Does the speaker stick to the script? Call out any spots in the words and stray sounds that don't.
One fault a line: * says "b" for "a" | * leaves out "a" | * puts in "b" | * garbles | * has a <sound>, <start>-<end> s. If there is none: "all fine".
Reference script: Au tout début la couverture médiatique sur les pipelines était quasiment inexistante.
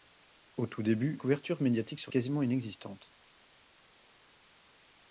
* leaves out "la"
* leaves out "les pipelines était"